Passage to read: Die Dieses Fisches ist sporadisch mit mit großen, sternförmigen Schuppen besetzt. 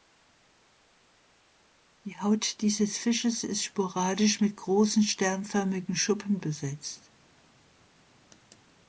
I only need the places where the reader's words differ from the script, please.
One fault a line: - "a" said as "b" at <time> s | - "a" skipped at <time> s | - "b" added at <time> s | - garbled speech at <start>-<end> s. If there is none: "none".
- "Haut" added at 2.2 s
- "mit" skipped at 4.5 s